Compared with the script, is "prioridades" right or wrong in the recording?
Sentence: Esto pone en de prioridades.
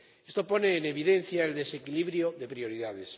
right